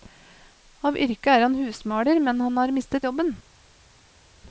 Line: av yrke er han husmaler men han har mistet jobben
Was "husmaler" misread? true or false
false